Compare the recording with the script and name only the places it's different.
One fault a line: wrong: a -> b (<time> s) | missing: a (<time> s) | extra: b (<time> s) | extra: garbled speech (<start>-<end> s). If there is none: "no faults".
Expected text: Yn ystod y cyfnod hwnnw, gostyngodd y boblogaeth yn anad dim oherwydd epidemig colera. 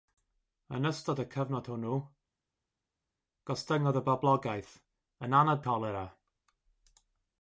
missing: dim oherwydd epidemig (5.6 s)